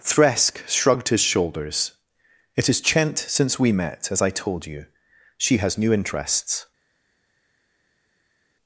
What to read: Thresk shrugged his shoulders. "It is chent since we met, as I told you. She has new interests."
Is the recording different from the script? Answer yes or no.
no